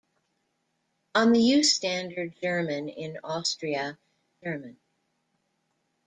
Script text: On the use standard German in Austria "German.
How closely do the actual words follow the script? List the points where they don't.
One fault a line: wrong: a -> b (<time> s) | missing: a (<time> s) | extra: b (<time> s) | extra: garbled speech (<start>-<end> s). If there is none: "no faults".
no faults